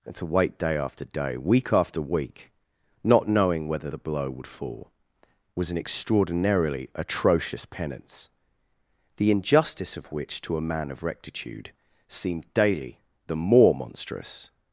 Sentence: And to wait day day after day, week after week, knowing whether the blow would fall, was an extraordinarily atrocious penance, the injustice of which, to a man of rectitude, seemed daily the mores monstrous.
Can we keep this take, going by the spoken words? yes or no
no